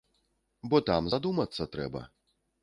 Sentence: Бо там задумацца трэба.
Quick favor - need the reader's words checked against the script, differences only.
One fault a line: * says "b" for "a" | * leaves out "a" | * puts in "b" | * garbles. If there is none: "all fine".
all fine